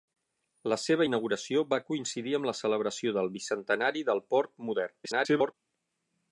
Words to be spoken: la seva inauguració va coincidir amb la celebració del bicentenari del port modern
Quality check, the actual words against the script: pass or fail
fail